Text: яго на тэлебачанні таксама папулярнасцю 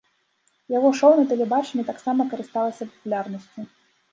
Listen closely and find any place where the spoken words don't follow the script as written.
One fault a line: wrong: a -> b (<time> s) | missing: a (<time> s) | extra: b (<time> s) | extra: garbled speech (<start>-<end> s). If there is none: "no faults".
extra: шоў (1.0 s)
extra: карысталася (2.3 s)